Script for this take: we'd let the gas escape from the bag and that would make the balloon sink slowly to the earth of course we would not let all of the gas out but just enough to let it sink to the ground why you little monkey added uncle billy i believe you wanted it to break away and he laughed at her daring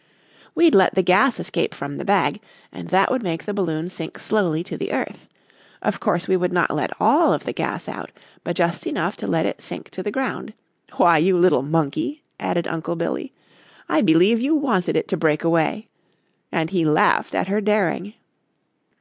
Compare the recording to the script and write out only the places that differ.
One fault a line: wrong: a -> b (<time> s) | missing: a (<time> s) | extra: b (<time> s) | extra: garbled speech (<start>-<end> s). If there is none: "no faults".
no faults